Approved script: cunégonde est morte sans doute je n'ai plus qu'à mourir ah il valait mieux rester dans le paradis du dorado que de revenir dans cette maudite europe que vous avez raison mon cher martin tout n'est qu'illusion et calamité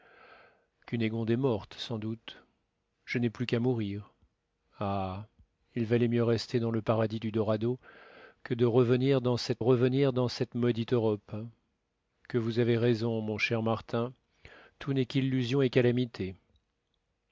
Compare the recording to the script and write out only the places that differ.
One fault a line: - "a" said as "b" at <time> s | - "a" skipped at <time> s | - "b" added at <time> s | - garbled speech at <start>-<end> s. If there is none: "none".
- "revenir dans cette" added at 9.6 s